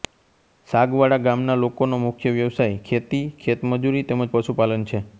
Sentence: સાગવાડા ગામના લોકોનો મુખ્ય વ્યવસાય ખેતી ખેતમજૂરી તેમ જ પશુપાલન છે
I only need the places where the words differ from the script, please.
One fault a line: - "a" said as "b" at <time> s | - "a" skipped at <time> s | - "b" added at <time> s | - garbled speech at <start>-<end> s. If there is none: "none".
none